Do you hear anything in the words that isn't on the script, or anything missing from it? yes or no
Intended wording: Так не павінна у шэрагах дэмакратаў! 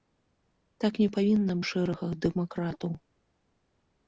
no